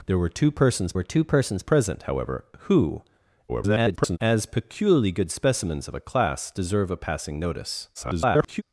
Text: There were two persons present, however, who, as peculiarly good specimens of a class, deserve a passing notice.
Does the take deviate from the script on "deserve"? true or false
false